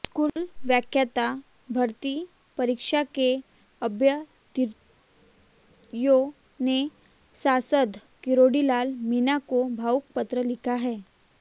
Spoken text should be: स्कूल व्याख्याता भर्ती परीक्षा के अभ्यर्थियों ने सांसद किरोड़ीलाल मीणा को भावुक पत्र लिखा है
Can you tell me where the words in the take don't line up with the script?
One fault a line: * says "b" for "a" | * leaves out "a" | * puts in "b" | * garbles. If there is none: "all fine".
all fine